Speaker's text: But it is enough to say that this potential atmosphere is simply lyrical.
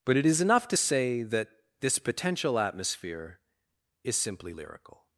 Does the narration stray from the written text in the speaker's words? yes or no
no